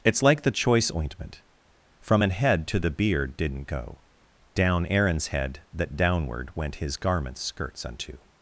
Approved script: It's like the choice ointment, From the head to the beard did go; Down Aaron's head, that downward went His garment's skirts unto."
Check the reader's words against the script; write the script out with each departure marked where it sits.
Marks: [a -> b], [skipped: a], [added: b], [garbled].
It's like the choice ointment, From [the -> an] head to the beard [did -> didn't] go; Down Aaron's head, that downward went His garment's skirts unto."